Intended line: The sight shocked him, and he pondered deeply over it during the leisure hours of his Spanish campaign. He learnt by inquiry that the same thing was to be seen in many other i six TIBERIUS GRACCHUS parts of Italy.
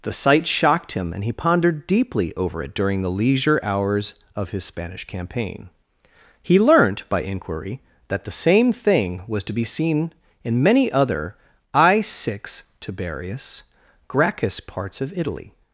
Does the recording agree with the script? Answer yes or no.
yes